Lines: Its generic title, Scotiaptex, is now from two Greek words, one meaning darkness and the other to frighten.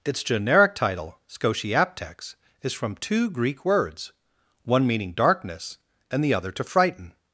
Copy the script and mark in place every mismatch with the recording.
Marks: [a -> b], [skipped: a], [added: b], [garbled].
Its generic title, Scotiaptex, is [skipped: now] from two Greek words, one meaning darkness and the other to frighten.